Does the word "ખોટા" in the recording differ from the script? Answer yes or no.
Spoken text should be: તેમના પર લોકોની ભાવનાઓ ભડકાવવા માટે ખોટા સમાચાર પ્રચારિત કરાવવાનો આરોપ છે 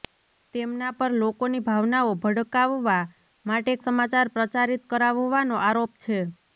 yes